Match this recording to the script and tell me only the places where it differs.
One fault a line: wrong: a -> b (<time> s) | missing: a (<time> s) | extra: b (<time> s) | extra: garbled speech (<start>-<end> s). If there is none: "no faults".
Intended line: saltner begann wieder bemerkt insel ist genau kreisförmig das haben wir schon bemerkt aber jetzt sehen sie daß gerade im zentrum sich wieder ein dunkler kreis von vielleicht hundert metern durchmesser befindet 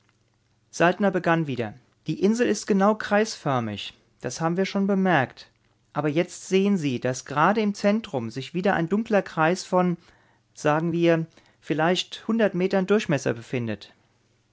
wrong: bemerkt -> die (2.1 s)
extra: sagen wir (10.5 s)